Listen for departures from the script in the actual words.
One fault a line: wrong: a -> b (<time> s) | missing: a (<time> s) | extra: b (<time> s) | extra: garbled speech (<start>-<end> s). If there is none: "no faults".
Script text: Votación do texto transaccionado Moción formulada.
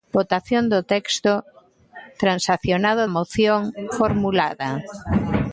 no faults